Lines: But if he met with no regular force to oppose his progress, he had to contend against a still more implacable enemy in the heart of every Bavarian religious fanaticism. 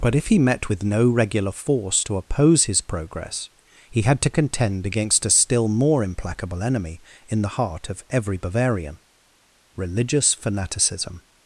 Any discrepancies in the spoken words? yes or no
no